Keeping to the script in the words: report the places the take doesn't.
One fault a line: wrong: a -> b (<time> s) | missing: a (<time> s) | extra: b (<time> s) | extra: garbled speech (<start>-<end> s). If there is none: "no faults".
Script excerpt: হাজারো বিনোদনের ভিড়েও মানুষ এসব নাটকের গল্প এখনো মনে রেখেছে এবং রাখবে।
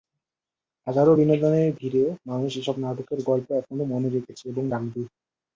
no faults